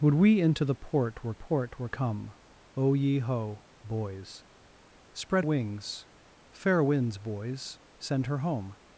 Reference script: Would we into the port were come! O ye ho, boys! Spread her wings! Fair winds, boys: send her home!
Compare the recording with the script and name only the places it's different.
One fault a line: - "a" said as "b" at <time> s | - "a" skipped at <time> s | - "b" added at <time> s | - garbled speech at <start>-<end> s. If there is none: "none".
- "port were" added at 1.3 s
- "her" skipped at 5.5 s